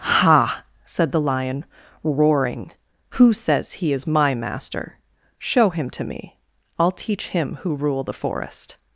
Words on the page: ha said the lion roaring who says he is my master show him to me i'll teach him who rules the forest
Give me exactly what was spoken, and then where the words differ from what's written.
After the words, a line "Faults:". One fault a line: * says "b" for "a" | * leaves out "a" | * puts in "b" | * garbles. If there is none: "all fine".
ha said the lion roaring who says he is my master show him to me i'll teach him who rule the forest
Faults:
* says "rule" for "rules"